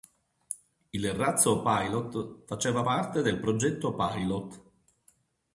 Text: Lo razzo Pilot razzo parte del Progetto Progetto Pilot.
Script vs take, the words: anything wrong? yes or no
yes